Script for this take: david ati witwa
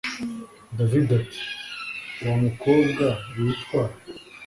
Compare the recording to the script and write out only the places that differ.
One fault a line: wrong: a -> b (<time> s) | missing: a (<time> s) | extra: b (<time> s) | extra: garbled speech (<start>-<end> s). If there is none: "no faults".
extra: wamukobwa (2.2 s)